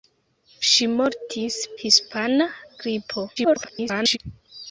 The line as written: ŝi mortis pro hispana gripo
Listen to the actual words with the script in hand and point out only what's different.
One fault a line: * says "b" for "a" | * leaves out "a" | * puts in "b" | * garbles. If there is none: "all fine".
* leaves out "pro"
* garbles